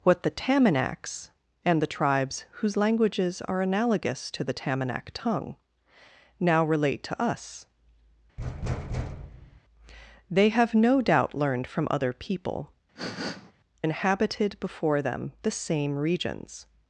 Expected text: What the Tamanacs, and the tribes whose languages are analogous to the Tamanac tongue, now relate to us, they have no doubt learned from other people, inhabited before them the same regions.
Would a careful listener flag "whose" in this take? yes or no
no